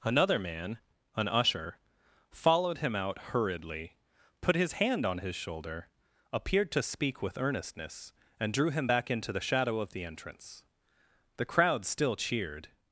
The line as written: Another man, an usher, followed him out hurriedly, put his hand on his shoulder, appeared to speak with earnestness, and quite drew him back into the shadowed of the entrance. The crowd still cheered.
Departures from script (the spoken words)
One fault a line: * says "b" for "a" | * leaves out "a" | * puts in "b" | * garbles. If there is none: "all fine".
* leaves out "quite"
* says "shadow" for "shadowed"